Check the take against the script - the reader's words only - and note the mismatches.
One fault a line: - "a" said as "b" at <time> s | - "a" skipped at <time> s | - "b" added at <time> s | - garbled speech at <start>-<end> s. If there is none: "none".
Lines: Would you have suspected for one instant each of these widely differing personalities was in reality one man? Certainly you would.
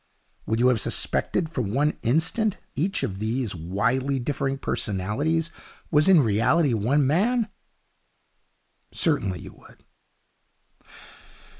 none